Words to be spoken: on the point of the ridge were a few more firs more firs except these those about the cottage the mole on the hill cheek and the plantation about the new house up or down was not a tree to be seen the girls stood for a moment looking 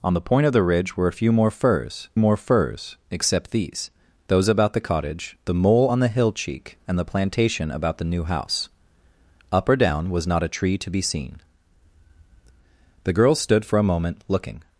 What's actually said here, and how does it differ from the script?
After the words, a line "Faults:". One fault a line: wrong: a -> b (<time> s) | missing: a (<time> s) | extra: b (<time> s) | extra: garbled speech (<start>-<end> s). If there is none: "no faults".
on the point of the ridge were a few more firs more firs except these those about the cottage the mole on the hill cheek and the plantation about the new house up or down was not a tree to be seen the girls stood for a moment looking
Faults:
no faults